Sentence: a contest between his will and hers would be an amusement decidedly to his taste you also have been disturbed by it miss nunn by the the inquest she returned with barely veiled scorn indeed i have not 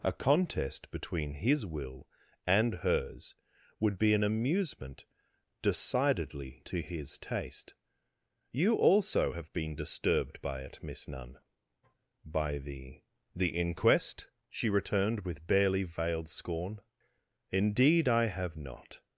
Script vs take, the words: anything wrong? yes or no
no